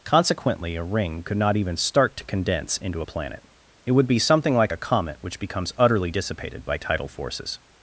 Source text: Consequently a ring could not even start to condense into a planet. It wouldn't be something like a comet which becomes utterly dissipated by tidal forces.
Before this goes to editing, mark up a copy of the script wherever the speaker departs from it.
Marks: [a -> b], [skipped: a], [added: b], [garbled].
Consequently a ring could not even start to condense into a planet. It [wouldn't -> would] be something like a comet which becomes utterly dissipated by tidal forces.